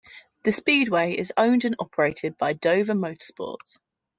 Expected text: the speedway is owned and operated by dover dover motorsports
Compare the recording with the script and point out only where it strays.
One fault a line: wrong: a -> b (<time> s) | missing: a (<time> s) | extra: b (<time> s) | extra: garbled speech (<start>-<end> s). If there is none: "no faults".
missing: dover (2.9 s)